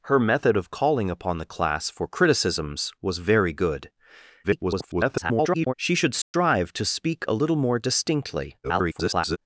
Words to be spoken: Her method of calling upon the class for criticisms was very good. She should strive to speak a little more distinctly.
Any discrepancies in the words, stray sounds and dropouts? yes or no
yes